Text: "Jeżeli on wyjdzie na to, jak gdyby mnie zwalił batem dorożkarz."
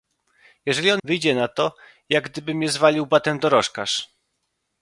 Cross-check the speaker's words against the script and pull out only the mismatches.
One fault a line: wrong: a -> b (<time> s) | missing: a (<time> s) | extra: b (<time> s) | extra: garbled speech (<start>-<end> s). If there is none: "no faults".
no faults